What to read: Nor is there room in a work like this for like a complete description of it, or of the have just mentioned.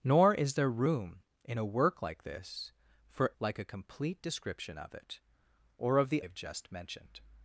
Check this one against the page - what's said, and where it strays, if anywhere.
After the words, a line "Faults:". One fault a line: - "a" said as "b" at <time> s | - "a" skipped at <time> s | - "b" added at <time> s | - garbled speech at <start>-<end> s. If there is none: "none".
Nor is there room in a work like this for like a complete description of it, or of the have just mentioned.
Faults:
none